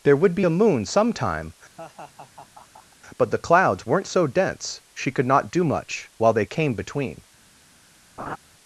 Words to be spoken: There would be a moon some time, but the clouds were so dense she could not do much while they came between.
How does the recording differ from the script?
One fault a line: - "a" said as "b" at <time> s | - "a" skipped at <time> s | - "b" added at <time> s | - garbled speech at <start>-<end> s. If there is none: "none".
- "were" said as "weren't" at 3.9 s